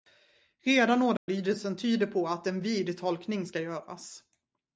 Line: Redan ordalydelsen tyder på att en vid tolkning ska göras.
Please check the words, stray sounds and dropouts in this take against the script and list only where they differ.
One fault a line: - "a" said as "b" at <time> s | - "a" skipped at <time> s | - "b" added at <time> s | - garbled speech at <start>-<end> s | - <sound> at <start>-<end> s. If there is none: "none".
- dropout at 1.2-1.3 s